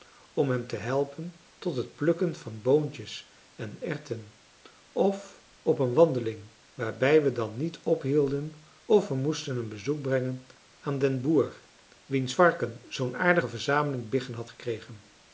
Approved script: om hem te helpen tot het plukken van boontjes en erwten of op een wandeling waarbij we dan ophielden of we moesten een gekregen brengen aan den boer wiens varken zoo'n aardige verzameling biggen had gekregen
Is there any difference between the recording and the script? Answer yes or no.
yes